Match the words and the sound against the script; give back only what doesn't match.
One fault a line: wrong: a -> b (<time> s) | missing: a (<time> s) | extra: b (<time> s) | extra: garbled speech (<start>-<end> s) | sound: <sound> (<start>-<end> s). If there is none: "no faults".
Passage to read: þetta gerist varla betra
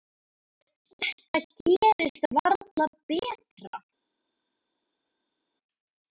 no faults